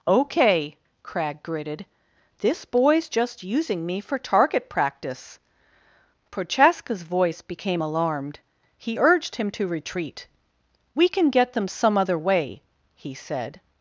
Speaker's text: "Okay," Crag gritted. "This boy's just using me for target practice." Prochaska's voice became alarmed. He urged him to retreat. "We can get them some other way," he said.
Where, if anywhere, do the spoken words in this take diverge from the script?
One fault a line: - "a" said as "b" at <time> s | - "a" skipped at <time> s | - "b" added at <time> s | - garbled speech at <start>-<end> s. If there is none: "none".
none